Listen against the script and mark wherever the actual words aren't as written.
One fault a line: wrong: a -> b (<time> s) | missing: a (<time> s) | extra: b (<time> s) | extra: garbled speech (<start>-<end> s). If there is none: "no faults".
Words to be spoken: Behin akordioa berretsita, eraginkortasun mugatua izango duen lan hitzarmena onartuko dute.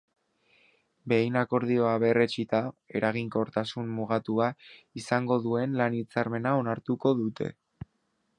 no faults